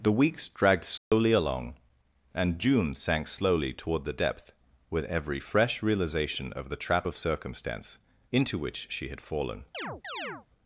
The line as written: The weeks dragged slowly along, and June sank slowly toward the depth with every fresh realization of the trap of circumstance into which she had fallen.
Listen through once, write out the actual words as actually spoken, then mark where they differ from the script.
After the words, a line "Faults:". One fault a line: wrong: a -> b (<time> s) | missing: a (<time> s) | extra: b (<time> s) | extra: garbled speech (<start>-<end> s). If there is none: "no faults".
The weeks dragged slowly along, and June sank slowly toward the depth with every fresh realization of the trap of circumstance into which she had fallen.
Faults:
no faults